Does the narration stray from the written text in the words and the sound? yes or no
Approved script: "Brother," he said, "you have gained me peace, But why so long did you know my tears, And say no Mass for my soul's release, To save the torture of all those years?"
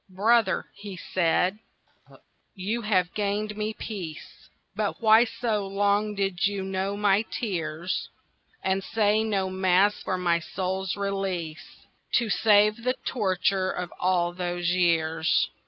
yes